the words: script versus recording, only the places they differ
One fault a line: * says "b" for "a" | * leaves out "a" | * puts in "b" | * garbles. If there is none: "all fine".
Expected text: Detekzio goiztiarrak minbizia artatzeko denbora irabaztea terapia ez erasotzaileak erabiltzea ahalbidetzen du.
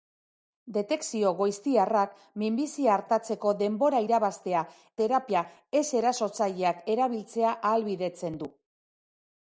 all fine